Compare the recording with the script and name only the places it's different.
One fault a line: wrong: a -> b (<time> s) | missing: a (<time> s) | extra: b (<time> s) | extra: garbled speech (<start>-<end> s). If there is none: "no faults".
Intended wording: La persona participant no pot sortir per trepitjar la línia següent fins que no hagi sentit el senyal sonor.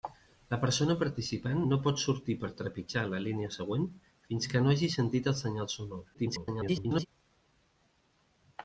extra: garbled speech (6.1-7.1 s)